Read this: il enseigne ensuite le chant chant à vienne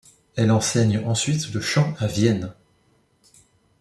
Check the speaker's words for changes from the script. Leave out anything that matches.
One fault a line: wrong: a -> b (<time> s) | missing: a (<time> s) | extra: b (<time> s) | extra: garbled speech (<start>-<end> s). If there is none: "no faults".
wrong: il -> elle (0.3 s)
missing: chant (1.9 s)